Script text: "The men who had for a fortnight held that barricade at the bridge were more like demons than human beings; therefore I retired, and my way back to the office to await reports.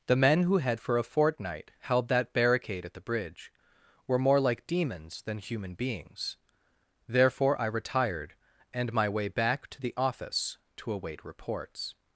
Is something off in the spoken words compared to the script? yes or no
no